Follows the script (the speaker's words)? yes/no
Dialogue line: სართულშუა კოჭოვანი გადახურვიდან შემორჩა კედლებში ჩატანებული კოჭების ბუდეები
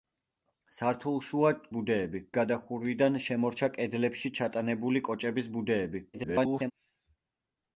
no